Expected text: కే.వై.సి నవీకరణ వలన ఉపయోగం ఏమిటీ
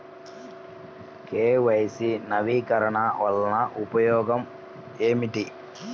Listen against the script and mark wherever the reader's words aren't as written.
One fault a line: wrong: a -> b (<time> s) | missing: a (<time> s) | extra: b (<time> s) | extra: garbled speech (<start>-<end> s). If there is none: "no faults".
no faults